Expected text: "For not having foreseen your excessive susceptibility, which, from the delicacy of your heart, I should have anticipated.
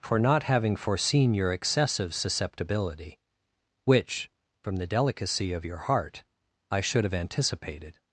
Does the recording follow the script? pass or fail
pass